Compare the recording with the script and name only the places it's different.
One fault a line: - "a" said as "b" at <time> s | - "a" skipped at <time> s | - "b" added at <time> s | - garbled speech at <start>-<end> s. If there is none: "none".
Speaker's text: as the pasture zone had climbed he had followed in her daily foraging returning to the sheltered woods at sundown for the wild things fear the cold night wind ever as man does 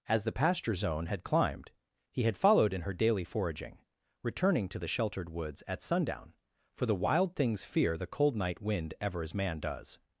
none